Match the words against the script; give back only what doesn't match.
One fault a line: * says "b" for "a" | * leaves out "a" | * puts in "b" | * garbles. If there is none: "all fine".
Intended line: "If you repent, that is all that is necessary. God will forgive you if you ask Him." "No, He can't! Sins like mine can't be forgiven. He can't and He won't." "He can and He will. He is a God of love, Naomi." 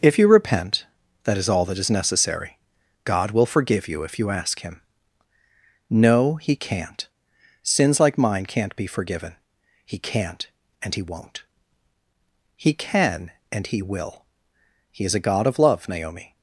all fine